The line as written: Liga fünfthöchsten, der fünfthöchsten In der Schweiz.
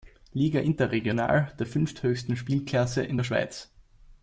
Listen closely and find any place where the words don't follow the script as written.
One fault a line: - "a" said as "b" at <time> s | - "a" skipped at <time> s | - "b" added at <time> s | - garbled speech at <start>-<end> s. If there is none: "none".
- "fünfthöchsten" said as "interregional" at 0.6 s
- "Spielklasse" added at 2.4 s